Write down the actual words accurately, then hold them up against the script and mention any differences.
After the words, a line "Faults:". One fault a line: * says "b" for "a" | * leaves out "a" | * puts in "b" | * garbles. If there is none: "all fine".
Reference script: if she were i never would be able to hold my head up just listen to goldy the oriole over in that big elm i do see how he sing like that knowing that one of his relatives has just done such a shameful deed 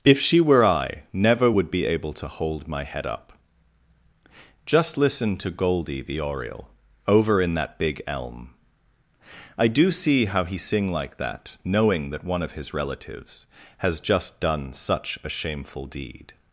if she were i never would be able to hold my head up just listen to goldy the oriole over in that big elm i do see how he sing like that knowing that one of his relatives has just done such a shameful deed
Faults:
all fine